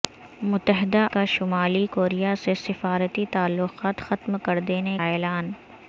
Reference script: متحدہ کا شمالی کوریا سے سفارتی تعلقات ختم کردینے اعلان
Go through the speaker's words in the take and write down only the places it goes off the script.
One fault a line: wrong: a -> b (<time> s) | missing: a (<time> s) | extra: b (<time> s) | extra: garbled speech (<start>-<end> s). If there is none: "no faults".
no faults